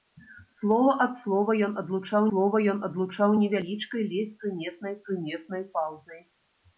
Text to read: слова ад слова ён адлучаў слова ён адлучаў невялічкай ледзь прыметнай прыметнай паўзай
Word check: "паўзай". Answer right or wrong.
right